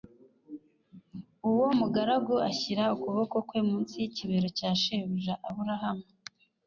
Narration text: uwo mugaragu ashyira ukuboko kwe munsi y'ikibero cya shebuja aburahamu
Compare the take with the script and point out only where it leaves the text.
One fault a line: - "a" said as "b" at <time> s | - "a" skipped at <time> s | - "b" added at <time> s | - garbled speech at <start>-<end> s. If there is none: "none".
none